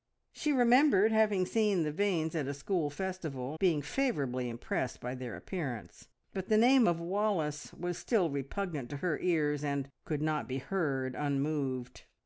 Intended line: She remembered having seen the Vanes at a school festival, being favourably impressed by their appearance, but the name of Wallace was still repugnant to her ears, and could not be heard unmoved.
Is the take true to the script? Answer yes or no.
yes